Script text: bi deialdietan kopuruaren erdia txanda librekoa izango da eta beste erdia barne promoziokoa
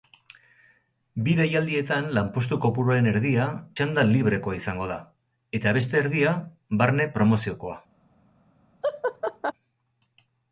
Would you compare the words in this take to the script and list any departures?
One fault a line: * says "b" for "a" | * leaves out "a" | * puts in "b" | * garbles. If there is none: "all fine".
* puts in "lanpostu"